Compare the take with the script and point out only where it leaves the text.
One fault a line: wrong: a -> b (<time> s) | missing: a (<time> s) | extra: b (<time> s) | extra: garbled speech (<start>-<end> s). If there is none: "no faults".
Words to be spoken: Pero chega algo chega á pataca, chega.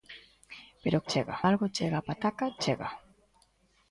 no faults